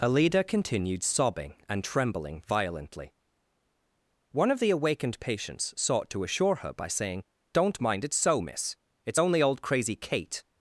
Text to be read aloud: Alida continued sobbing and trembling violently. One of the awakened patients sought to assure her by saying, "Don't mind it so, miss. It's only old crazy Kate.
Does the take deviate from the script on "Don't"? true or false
false